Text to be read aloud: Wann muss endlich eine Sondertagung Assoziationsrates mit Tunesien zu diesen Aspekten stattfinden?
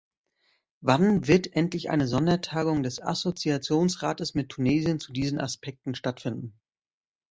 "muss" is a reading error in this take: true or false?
true